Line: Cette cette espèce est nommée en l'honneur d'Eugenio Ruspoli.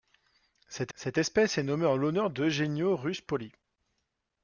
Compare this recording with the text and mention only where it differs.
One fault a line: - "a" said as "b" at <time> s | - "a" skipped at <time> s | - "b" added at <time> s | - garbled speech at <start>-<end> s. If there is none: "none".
none